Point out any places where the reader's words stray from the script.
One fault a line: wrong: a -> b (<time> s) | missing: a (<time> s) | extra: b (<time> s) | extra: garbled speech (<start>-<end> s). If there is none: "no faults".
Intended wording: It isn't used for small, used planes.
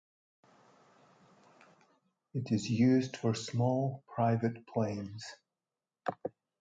wrong: isn't -> is (2.5 s)
wrong: used -> private (4.1 s)